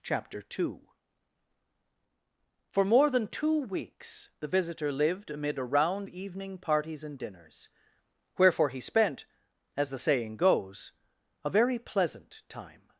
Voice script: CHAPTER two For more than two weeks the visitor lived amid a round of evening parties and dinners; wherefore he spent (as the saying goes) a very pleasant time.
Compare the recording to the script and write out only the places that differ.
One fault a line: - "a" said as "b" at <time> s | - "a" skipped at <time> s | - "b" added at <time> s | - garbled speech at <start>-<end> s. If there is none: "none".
- "of" skipped at 6.1 s